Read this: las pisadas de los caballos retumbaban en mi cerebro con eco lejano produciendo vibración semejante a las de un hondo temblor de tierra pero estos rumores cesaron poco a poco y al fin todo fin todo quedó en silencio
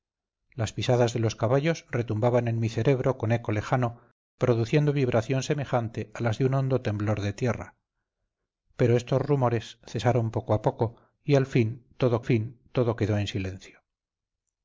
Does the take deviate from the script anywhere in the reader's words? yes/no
no